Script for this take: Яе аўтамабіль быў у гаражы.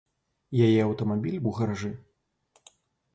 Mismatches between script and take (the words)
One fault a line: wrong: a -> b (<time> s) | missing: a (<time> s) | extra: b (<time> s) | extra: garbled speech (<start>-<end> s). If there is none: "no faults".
missing: быў (1.4 s)